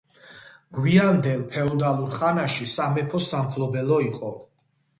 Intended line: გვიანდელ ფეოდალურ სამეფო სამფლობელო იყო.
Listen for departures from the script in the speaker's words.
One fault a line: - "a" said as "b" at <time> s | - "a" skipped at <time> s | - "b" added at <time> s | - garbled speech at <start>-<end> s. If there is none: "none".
- "ხანაში" added at 2.2 s